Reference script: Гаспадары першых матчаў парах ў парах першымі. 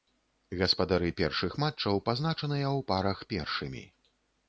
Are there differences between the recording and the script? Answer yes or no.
yes